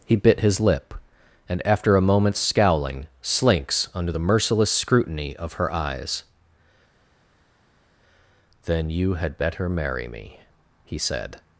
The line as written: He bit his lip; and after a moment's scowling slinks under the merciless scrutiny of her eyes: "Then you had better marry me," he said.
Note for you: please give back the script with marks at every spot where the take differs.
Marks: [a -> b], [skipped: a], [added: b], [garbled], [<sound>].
He bit his lip; and after a moment's scowling slinks under the merciless scrutiny of her eyes: "Then you had better marry me," he said.